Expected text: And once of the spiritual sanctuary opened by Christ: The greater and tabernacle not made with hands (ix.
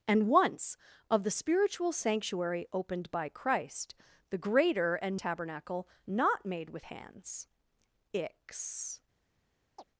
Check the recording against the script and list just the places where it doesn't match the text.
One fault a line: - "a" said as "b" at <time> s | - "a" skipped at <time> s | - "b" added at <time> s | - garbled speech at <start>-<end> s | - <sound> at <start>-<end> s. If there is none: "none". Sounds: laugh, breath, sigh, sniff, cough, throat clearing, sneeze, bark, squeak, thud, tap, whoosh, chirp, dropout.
- chirp at 9.8-9.8 s